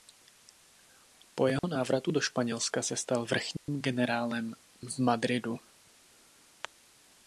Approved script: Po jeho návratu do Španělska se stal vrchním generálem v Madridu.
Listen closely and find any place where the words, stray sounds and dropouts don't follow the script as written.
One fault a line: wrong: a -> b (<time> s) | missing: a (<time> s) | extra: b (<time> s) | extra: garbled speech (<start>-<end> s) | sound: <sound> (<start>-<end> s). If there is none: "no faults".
sound: dropout (1.6-1.6 s)
sound: dropout (3.6-3.7 s)